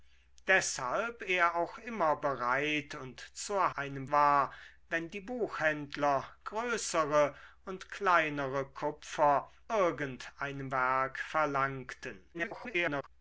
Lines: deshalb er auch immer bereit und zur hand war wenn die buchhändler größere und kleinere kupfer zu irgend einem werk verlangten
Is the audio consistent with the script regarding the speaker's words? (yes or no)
no